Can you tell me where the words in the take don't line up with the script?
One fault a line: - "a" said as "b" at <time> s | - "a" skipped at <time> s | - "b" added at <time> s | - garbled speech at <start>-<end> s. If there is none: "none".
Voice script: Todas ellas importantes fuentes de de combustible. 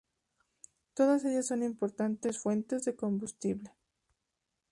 - "son" added at 1.4 s
- "de" skipped at 2.9 s